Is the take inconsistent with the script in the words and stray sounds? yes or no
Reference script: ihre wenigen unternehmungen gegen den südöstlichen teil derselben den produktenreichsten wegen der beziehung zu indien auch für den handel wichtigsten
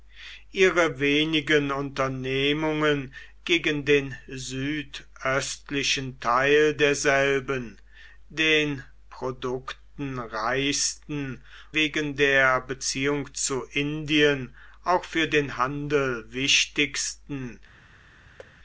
yes